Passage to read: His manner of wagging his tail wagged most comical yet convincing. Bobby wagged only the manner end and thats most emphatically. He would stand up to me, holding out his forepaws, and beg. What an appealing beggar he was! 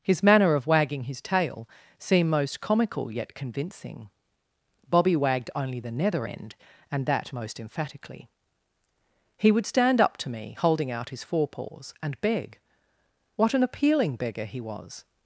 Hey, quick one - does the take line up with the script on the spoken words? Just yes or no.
no